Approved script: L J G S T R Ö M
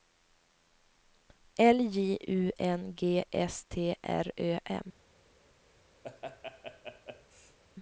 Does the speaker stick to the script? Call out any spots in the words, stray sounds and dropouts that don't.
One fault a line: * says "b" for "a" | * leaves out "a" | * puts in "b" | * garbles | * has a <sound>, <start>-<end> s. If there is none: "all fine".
* puts in "U N"
* has a laugh, 6.0-7.6 s